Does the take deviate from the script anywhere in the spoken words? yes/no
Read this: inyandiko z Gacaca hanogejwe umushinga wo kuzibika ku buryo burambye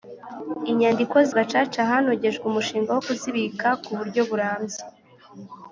no